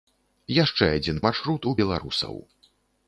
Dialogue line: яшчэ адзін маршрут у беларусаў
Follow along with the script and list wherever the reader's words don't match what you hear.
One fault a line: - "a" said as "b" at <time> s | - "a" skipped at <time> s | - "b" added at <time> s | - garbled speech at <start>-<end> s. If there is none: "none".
none